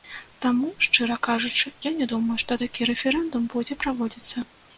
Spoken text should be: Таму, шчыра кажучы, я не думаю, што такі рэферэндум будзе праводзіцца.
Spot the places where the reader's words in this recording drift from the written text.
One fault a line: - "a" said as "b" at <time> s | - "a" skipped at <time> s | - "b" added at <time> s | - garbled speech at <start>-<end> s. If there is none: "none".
none